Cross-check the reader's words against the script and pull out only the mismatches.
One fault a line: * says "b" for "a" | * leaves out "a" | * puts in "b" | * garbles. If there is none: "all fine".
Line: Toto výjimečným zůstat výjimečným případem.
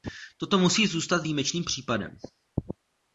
* says "musí" for "výjimečným"